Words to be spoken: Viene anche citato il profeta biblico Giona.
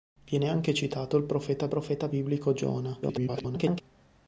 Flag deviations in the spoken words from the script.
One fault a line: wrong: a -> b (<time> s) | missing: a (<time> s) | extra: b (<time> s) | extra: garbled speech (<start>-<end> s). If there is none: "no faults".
extra: profeta (1.7 s)
extra: garbled speech (3.0-3.8 s)